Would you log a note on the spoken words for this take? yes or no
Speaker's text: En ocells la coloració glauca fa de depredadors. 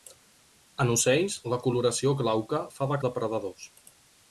no